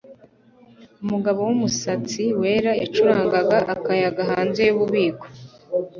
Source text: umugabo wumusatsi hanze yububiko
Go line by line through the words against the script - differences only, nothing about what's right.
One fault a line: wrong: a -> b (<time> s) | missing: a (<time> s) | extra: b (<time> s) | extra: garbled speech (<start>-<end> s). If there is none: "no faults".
extra: wera yacurangaga akayaga (2.4 s)